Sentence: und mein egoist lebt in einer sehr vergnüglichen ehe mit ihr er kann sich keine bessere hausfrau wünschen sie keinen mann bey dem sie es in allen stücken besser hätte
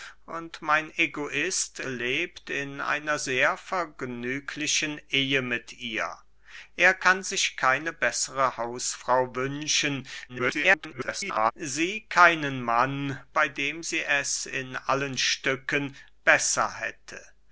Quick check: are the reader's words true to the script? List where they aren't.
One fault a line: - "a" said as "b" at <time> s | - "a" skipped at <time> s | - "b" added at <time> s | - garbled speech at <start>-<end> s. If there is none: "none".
- garbled speech at 10.3-11.5 s